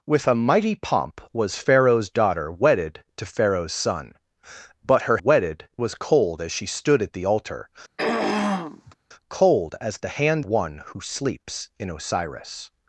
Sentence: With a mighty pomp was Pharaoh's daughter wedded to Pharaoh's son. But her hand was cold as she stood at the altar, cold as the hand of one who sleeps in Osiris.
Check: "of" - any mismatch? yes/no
yes